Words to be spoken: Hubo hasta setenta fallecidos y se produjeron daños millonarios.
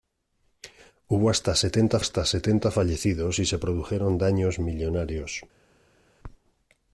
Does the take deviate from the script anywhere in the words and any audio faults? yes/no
yes